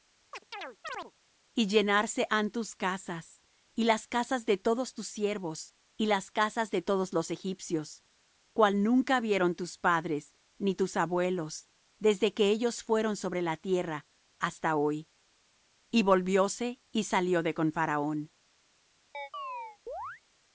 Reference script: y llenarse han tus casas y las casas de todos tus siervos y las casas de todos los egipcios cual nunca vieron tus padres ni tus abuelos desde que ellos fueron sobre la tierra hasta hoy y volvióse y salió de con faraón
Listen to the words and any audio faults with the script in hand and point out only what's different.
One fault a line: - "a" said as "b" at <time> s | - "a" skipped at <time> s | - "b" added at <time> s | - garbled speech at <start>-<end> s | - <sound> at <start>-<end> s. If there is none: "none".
- chirp at 0.3-1.1 s
- chirp at 19.1-20.2 s